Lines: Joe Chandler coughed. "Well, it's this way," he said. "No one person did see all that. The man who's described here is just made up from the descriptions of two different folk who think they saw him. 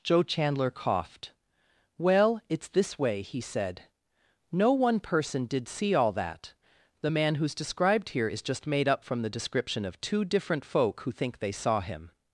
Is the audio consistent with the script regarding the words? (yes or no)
no